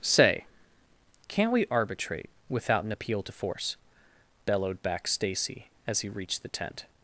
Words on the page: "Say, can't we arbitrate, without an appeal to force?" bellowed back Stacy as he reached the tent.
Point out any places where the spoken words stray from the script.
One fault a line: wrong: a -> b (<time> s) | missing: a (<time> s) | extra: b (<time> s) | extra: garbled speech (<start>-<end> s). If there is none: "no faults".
no faults